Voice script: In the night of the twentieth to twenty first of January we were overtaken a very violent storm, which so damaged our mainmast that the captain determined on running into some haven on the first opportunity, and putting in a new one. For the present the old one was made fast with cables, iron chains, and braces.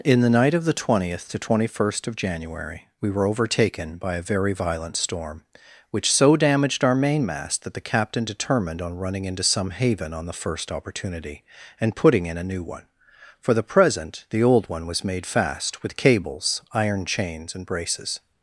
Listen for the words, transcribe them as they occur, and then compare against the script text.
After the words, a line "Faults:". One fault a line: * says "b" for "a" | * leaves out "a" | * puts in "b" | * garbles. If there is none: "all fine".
In the night of the twentieth to twenty first of January we were overtaken by a very violent storm, which so damaged our mainmast that the captain determined on running into some haven on the first opportunity, and putting in a new one. For the present the old one was made fast with cables, iron chains, and braces.
Faults:
* puts in "by"